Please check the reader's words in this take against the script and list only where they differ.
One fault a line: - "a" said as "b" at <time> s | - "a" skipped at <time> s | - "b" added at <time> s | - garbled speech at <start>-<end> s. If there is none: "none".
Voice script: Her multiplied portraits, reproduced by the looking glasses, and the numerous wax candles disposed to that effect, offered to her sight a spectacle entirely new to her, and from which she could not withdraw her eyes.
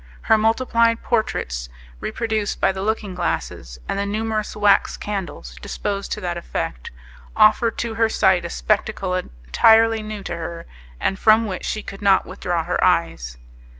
none